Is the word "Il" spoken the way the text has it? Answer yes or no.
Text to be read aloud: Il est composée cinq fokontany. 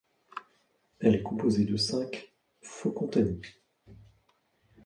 no